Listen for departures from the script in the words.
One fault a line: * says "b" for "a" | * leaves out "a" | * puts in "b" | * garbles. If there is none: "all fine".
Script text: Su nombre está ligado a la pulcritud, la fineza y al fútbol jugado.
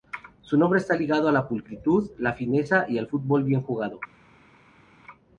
* puts in "bien"